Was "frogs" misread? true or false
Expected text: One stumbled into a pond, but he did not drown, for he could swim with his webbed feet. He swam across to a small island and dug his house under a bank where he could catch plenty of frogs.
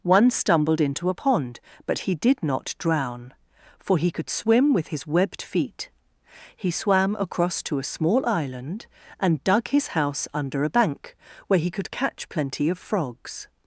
false